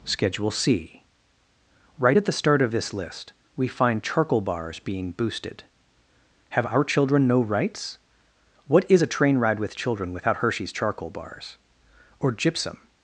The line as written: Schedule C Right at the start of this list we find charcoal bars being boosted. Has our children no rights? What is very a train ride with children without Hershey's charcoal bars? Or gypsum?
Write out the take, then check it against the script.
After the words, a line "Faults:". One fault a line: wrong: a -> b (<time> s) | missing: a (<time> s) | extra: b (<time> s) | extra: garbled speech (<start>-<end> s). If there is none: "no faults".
Schedule C Right at the start of this list we find charcoal bars being boosted. Have our children no rights? What is a train ride with children without Hershey's charcoal bars? Or gypsum?
Faults:
wrong: Has -> Have (6.5 s)
missing: very (9.0 s)